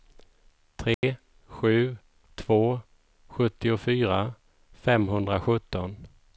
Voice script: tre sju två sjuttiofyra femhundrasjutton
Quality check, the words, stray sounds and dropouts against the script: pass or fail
fail